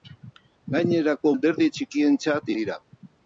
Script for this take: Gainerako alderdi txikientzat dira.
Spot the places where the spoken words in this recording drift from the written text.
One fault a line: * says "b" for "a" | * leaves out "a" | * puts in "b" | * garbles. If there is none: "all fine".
all fine